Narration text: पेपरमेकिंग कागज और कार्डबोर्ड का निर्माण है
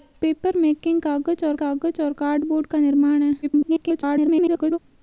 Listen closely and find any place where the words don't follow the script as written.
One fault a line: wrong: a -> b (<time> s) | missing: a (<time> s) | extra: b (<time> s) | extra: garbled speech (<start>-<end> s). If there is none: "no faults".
extra: कागज और (1.6 s)
extra: garbled speech (3.4-4.8 s)